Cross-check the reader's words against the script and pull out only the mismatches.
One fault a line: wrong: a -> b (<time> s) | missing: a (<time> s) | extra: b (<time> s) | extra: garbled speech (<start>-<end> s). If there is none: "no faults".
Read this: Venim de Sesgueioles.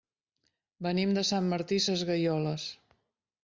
extra: Sant Martí (1.3 s)